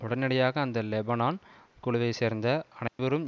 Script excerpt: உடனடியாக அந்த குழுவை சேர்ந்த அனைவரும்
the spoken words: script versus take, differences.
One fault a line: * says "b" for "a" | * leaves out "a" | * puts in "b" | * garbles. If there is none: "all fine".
* puts in "லெபனான்"